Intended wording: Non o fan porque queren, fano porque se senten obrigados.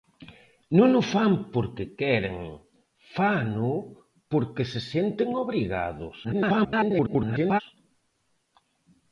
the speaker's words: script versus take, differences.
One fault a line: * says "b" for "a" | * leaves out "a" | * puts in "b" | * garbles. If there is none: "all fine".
* garbles